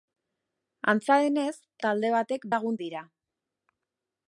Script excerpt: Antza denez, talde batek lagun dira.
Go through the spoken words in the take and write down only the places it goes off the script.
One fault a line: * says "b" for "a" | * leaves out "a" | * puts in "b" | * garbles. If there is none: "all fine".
all fine